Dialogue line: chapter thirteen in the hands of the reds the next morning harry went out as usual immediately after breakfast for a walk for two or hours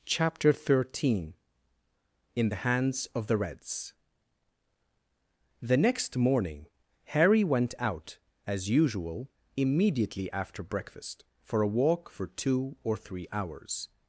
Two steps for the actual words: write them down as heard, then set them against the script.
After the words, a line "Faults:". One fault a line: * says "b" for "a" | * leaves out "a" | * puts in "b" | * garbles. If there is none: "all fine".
chapter thirteen in the hands of the reds the next morning harry went out as usual immediately after breakfast for a walk for two or three hours
Faults:
* puts in "three"